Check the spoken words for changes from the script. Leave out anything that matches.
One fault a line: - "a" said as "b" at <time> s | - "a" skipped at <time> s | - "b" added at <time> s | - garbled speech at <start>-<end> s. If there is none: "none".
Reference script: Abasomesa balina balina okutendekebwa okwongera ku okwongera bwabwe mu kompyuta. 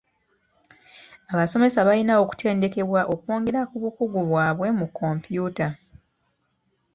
- "balina" skipped at 2.1 s
- "okwongera" said as "bukugu" at 3.8 s